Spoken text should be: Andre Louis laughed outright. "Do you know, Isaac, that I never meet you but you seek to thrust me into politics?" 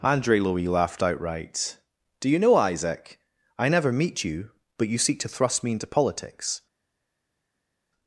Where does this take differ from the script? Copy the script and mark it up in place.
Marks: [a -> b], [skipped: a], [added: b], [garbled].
Andre Louis laughed outright. "Do you know, Isaac, [skipped: that] I never meet you but you seek to thrust me into politics?"